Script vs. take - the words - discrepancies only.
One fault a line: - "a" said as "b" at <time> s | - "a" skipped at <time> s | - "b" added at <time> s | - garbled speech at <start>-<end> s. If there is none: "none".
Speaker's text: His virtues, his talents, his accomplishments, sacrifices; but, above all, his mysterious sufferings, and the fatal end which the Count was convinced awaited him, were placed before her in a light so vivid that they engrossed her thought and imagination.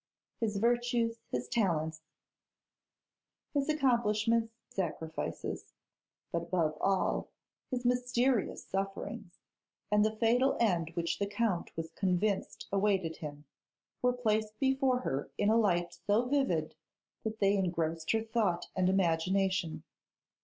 none